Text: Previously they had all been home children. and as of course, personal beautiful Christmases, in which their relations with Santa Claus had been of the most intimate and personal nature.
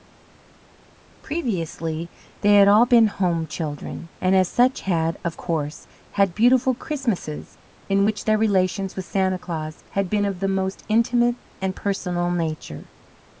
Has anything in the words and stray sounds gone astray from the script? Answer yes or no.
yes